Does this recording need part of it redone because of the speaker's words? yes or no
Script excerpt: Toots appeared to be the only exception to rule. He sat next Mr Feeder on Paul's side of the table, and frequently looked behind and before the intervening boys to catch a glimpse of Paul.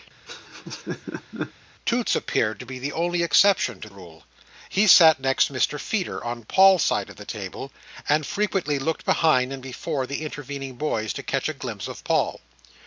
no